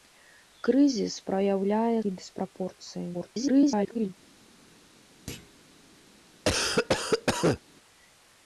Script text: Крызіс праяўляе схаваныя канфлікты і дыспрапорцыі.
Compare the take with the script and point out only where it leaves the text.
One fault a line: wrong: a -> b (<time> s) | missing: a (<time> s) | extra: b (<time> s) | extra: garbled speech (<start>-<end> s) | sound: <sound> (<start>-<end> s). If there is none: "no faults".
missing: схаваныя канфлікты (2.0 s)
extra: garbled speech (3.1-4.1 s)
sound: thud (5.3-5.6 s)
sound: cough (6.5-7.6 s)